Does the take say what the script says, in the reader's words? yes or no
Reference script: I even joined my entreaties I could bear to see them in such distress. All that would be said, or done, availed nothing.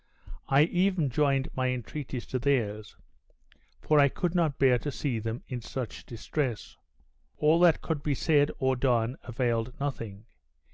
no